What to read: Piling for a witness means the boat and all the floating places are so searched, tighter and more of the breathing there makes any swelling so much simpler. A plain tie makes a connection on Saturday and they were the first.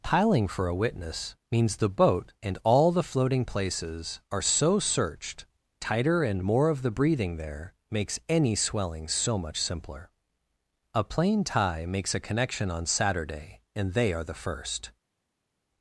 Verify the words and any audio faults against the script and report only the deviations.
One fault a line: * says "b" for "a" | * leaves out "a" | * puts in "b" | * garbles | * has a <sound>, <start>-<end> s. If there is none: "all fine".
* says "are" for "were"